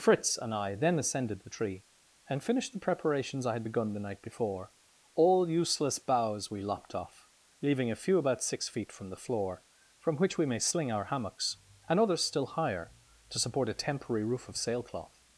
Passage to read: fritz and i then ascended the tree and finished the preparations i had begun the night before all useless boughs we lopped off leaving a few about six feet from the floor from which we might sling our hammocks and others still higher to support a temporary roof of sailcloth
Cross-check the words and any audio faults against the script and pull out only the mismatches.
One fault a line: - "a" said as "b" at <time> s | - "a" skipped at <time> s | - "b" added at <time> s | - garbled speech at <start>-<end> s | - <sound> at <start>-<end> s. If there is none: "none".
- "might" said as "may" at 10.5 s